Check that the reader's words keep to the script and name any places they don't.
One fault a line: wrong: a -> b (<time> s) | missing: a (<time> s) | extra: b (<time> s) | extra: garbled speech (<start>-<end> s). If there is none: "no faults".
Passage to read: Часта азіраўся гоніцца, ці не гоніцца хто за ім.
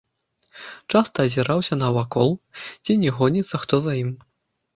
wrong: гоніцца -> навакол (1.8 s)